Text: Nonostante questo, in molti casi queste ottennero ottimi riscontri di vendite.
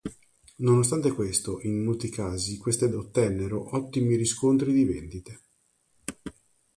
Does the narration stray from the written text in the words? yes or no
no